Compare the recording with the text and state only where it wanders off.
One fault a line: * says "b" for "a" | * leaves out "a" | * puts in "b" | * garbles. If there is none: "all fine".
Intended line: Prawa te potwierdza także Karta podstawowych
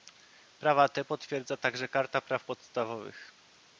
* puts in "praw"